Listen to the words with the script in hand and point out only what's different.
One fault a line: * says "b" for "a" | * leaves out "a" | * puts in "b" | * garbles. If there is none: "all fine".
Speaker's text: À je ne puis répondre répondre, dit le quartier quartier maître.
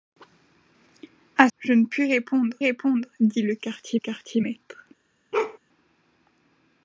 all fine